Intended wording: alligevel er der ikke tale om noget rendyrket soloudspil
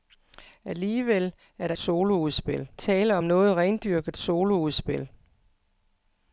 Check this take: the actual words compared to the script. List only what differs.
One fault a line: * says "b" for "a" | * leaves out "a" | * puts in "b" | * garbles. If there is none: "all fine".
* says "soloudspil" for "ikke"